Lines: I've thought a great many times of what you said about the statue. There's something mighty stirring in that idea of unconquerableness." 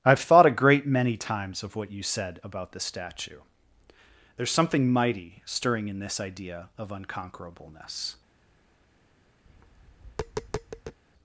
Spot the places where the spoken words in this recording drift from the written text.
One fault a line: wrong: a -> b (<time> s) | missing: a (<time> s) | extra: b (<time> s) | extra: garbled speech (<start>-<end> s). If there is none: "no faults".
wrong: that -> this (6.0 s)